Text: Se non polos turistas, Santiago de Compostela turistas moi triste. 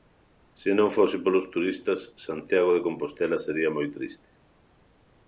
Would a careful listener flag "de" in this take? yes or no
no